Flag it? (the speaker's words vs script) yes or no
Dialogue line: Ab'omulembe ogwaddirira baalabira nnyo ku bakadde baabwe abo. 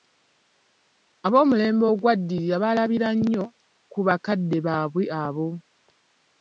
no